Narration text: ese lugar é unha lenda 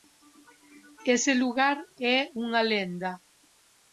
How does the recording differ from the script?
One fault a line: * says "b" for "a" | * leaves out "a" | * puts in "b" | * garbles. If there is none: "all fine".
all fine